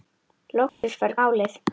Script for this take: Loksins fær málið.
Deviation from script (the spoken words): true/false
false